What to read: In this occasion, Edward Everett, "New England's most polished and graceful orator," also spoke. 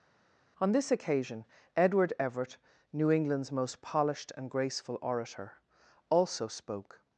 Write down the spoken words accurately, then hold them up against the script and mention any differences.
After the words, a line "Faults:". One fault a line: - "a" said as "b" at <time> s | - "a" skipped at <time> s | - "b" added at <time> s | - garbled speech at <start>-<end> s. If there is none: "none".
On this occasion, Edward Everett, "New England's most polished and graceful orator," also spoke.
Faults:
- "In" said as "On" at 0.6 s